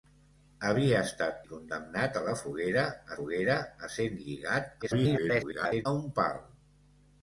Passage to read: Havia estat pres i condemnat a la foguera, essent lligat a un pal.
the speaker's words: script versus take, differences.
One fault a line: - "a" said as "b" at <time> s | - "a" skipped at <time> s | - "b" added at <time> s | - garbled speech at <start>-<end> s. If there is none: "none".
- "pres" skipped at 1.4 s
- "foguera" added at 3.2 s
- garbled speech at 4.8-5.9 s